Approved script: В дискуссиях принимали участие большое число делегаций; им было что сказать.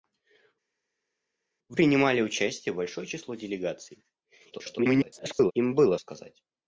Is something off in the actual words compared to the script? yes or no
yes